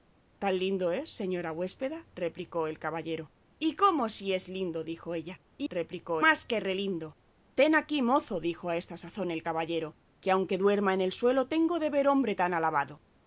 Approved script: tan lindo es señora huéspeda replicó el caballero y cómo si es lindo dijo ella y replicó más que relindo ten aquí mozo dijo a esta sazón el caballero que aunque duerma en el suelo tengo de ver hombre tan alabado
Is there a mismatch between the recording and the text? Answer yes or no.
no